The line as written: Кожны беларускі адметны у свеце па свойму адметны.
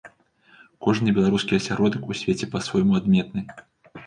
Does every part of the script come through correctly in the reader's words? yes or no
no